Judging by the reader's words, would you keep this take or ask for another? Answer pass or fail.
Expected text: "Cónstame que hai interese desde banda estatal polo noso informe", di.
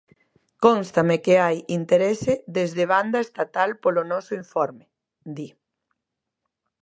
pass